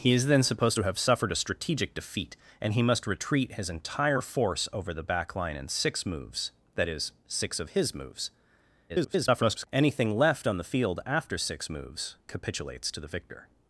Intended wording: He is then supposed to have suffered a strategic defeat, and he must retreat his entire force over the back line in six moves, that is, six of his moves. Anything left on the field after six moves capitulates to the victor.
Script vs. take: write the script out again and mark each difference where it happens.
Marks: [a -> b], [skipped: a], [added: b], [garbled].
He is then supposed to have suffered a strategic defeat, and he must retreat his entire force over the back line in six moves, that is, six of his moves. [garbled] Anything left on the field after six moves capitulates to the victor.